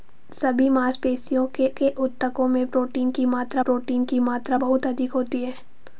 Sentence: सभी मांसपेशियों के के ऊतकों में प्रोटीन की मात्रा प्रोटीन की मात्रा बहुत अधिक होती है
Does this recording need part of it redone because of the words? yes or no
no